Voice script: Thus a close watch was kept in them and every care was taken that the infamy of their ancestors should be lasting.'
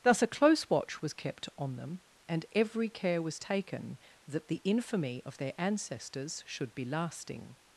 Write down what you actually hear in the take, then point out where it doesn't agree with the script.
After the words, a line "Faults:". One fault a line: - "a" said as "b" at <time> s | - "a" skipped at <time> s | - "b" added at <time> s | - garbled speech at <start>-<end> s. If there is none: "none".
Thus a close watch was kept on them and every care was taken that the infamy of their ancestors should be lasting.'
Faults:
- "in" said as "on" at 1.6 s